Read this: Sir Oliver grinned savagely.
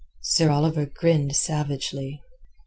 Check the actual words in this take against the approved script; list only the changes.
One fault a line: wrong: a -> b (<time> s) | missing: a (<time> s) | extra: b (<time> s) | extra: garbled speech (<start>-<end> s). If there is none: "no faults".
no faults